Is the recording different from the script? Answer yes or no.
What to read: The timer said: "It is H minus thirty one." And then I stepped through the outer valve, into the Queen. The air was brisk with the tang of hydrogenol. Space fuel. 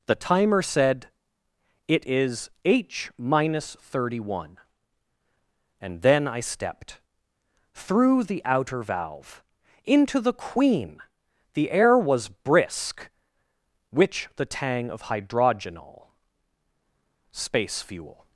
yes